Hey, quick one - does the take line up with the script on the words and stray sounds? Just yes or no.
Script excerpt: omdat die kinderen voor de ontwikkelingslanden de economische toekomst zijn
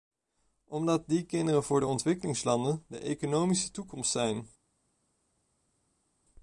yes